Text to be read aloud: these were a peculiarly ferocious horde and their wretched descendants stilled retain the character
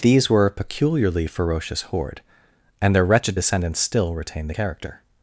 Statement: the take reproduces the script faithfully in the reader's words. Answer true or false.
false